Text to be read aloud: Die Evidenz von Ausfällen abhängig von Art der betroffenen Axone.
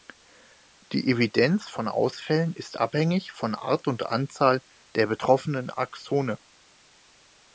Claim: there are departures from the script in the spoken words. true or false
true